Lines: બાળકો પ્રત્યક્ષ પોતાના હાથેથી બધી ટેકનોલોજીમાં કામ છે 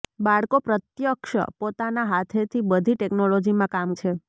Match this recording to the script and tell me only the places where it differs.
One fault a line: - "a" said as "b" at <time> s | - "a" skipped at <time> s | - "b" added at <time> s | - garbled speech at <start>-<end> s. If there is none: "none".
none